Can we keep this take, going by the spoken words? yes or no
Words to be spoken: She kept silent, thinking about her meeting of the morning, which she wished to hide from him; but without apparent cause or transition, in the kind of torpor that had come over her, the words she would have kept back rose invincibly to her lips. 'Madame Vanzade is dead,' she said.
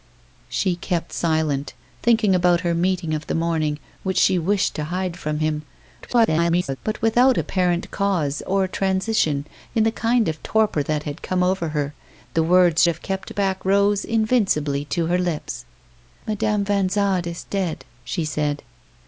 no